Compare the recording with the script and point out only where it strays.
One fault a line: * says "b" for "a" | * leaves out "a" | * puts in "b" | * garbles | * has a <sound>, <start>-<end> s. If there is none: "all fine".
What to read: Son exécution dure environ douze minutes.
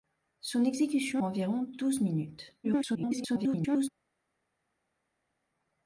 * leaves out "dure"
* garbles